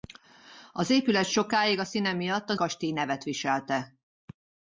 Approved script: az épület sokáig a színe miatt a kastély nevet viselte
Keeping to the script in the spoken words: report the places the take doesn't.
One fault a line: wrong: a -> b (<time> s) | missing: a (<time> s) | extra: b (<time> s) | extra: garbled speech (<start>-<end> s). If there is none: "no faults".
no faults